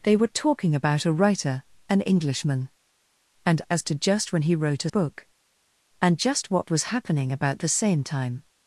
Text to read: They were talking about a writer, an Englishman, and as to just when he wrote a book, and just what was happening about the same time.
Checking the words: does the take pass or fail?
pass